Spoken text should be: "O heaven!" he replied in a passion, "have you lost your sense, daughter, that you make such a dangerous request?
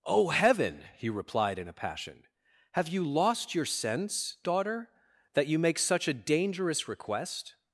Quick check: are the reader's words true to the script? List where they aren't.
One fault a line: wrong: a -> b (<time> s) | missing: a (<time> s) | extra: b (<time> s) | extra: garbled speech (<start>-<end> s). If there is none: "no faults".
no faults